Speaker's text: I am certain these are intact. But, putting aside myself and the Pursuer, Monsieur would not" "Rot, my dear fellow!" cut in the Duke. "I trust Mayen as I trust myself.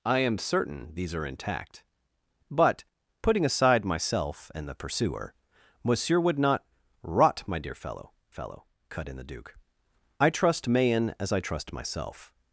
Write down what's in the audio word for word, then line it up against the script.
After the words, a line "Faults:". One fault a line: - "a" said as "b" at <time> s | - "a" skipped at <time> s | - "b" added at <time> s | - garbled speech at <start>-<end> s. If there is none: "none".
I am certain these are intact. But, putting aside myself and the Pursuer, Monsieur would not" "Rot, my dear fellow fellow!" cut in the Duke. "I trust Mayen as I trust myself.
Faults:
- "fellow" added at 8.3 s